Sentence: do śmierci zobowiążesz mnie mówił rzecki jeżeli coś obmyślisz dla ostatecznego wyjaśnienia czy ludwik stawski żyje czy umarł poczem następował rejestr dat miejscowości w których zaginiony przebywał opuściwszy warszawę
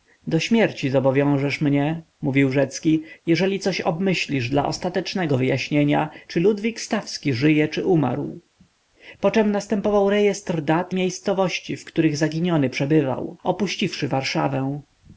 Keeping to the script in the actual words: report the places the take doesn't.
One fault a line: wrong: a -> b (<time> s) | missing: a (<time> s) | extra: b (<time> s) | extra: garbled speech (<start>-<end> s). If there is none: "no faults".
no faults